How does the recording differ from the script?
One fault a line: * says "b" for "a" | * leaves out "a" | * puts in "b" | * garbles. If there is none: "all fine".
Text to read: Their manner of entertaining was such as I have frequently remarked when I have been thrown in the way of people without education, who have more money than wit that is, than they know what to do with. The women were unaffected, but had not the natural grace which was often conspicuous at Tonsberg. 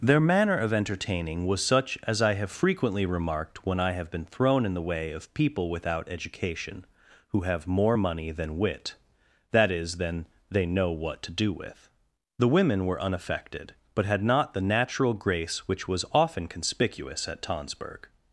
all fine